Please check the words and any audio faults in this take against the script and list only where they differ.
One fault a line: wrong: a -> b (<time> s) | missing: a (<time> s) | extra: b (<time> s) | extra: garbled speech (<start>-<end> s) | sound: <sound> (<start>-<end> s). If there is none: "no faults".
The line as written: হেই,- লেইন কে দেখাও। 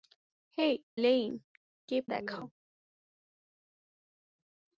no faults